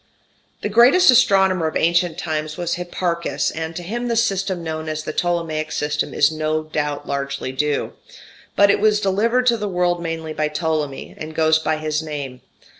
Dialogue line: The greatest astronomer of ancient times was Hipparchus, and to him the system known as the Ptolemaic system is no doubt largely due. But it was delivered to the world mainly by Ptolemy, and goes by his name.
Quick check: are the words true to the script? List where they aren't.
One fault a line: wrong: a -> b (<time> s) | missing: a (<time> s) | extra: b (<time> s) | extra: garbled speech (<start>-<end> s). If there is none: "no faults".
no faults